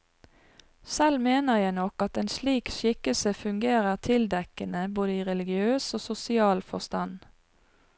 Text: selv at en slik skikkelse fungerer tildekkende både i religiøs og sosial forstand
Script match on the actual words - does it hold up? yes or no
no